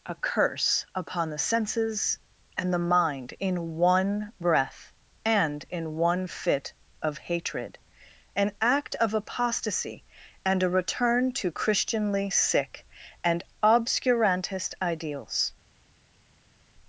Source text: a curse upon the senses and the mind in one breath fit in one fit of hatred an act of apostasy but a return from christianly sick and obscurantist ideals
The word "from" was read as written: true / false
false